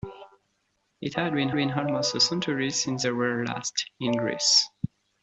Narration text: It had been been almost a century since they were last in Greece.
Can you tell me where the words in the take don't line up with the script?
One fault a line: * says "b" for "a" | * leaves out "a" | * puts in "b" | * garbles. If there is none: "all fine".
all fine